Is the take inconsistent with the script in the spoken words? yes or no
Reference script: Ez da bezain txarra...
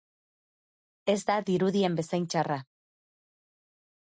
yes